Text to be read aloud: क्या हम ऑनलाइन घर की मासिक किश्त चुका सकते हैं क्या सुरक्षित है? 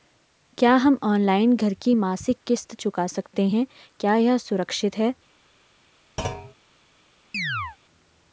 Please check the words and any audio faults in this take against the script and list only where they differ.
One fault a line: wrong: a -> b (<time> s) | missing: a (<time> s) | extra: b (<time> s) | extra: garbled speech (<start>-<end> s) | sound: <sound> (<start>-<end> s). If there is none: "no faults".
extra: यह (4.2 s)
sound: thud (6.2-6.5 s)
sound: chirp (7.3-7.8 s)